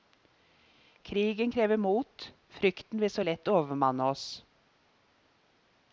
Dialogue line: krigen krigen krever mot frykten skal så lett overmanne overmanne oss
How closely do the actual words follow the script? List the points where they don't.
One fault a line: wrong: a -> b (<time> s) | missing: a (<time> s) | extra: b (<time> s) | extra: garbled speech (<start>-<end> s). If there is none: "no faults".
missing: krigen (1.5 s)
wrong: skal -> vil (3.0 s)
missing: overmanne (4.0 s)